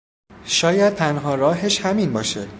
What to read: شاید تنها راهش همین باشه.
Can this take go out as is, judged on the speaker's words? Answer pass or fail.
pass